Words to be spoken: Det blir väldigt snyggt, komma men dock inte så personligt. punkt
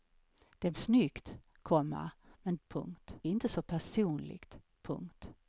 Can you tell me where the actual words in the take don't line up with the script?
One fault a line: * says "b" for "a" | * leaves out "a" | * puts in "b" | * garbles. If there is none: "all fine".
* leaves out "blir väldigt"
* says "punkt" for "dock"